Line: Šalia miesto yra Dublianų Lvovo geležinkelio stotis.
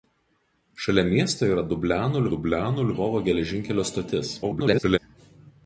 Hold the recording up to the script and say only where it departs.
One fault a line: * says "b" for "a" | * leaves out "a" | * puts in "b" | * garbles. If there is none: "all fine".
* puts in "Dublianų"
* garbles